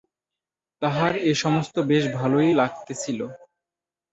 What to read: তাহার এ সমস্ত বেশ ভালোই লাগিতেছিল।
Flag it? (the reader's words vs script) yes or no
no